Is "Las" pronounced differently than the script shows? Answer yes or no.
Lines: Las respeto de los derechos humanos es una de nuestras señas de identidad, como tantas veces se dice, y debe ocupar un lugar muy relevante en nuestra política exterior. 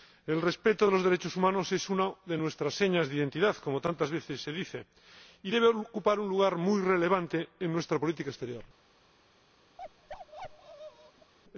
yes